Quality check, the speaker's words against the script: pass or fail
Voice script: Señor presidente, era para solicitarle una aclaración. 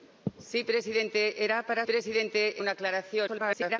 fail